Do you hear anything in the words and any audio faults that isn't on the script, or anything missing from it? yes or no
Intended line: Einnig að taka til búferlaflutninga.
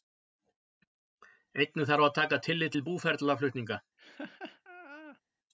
yes